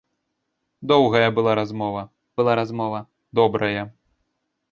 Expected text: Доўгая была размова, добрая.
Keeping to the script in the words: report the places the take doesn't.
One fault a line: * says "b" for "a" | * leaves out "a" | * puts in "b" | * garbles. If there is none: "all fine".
* puts in "была размова"